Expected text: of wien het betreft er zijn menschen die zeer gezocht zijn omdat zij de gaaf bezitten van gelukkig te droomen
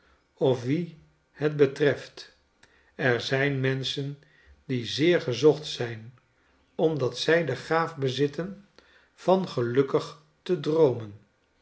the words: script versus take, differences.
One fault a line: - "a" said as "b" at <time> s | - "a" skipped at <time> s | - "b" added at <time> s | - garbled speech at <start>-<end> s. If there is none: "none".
none